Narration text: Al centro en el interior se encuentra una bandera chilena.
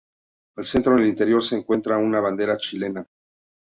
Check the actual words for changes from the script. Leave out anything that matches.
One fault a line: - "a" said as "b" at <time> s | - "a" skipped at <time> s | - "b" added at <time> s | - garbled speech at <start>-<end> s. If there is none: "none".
none